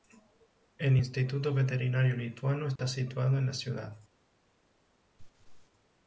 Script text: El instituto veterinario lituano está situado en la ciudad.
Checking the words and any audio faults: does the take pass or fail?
fail